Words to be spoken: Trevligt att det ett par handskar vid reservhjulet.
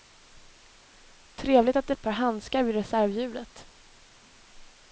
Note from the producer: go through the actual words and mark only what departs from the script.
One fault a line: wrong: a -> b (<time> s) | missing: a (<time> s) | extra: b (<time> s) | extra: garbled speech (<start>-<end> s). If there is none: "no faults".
no faults